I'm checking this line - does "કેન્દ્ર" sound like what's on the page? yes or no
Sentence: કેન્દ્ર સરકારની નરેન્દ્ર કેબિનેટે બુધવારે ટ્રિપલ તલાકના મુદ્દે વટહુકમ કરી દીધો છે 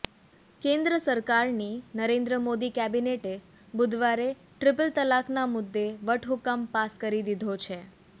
yes